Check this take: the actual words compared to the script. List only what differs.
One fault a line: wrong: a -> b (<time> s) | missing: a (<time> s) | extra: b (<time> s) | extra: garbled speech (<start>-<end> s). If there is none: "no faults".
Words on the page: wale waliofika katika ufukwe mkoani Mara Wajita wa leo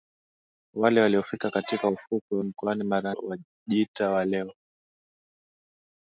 no faults